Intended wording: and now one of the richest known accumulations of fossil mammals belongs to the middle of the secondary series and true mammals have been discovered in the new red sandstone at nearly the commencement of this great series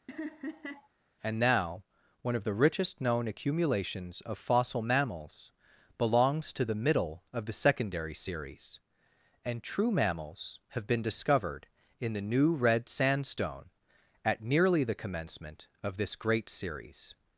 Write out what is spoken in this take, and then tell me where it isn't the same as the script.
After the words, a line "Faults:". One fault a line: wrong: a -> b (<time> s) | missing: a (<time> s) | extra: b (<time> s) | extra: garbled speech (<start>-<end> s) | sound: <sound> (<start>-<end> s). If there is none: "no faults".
and now one of the richest known accumulations of fossil mammals belongs to the middle of the secondary series and true mammals have been discovered in the new red sandstone at nearly the commencement of this great series
Faults:
sound: laugh (0.1-0.9 s)